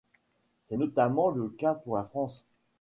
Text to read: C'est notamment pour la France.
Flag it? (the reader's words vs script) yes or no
yes